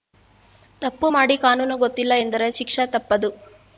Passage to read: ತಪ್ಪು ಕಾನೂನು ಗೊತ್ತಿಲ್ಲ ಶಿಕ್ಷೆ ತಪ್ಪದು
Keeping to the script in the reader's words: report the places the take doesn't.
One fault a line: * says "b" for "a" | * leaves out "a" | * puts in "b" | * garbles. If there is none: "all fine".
* puts in "ಮಾಡಿ"
* puts in "ಎಂದರೆ"